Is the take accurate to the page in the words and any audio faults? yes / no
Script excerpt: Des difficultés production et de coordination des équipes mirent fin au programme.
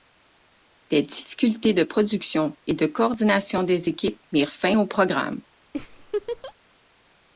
no